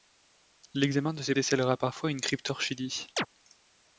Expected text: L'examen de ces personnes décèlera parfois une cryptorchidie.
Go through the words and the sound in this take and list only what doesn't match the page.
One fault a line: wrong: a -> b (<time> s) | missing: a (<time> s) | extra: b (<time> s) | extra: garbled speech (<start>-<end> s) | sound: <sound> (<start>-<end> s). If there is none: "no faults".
missing: personnes (1.4 s)
sound: chirp (3.2-3.3 s)